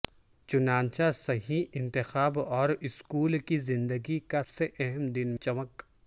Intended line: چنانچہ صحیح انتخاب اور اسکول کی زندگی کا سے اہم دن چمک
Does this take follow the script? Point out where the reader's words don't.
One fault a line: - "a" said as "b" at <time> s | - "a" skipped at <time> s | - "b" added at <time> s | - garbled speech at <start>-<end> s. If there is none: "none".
none